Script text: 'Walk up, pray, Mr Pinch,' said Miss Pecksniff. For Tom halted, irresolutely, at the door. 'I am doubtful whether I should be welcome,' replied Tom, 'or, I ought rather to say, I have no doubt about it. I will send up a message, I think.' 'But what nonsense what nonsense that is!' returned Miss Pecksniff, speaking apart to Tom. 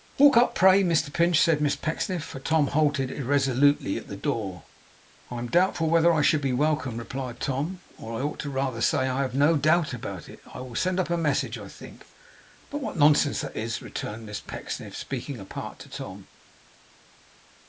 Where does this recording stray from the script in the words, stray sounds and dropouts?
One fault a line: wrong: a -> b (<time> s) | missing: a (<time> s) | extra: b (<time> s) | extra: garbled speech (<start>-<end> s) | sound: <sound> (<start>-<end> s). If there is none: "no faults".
missing: what nonsense (13.4 s)